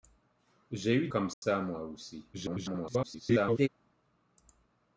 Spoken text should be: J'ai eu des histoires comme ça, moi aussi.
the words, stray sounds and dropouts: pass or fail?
fail